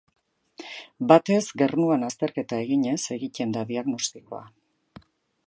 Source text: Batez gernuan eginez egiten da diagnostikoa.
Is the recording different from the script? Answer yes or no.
yes